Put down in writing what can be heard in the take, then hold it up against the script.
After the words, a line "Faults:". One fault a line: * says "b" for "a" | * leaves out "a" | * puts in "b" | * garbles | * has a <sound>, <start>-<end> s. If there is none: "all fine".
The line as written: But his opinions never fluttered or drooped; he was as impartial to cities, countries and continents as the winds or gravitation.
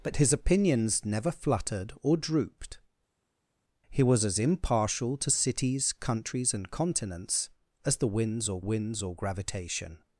But his opinions never fluttered or drooped; he was as impartial to cities, countries and continents as the winds or winds or gravitation.
Faults:
* puts in "winds or"